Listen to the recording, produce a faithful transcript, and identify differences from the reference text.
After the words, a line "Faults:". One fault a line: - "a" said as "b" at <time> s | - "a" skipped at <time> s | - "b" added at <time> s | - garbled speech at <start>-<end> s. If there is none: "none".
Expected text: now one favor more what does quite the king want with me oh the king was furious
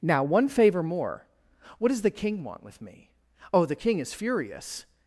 now one favor more what does the king want with me oh the king is furious
Faults:
- "quite" skipped at 2.0 s
- "was" said as "is" at 4.0 s